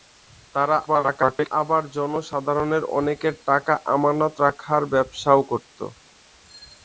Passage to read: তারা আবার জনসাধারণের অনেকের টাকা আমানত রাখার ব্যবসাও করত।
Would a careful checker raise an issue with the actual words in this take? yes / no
yes